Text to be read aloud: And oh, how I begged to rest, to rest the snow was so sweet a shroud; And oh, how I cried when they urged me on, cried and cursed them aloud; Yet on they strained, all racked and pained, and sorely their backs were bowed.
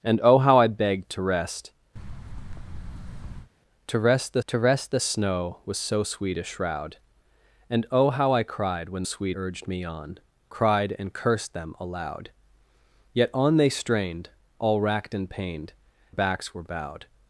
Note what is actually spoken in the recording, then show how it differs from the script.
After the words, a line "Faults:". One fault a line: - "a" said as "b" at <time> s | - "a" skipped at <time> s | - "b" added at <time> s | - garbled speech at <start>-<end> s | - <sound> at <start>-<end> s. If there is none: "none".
And oh, how I begged to rest, to rest the to rest the snow was so sweet a shroud; And oh, how I cried when sweet urged me on, cried and cursed them aloud; Yet on they strained, all racked and pained, backs were bowed.
Faults:
- thud at 2.0-3.5 s
- "to rest the" added at 4.5 s
- "they" said as "sweet" at 9.0 s
- "and sorely their" skipped at 15.7 s